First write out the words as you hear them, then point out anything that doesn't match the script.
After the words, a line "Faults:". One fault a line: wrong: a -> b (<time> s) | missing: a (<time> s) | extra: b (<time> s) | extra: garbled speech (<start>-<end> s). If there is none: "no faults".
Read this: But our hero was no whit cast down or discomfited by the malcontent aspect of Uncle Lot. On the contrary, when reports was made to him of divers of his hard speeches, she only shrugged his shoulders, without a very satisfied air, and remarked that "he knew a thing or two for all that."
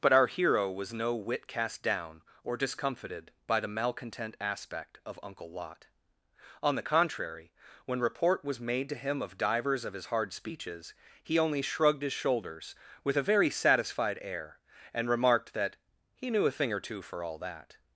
But our hero was no whit cast down or discomfited by the malcontent aspect of Uncle Lot. On the contrary, when report was made to him of divers of his hard speeches, he only shrugged his shoulders, with a very satisfied air, and remarked that "he knew a thing or two for all that."
Faults:
wrong: reports -> report (8.0 s)
wrong: she -> he (11.2 s)
wrong: without -> with (13.0 s)